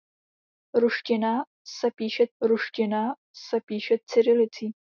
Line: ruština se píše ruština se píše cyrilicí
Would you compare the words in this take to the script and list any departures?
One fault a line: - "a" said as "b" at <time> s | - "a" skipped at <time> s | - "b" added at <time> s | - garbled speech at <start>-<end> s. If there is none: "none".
none